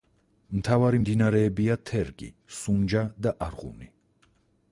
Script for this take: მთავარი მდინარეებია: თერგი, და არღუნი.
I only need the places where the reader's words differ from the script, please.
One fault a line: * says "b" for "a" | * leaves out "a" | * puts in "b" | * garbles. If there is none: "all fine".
* puts in "სუნჯა"